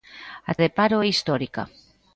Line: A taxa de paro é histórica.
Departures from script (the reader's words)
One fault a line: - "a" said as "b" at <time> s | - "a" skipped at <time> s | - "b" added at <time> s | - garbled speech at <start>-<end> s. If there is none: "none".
- "taxa" skipped at 0.5 s